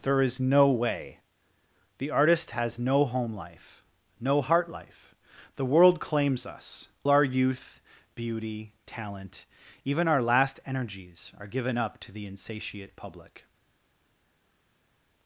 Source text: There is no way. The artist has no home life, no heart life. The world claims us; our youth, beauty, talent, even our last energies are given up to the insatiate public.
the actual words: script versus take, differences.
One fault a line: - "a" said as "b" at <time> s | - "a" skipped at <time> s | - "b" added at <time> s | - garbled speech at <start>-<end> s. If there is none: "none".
none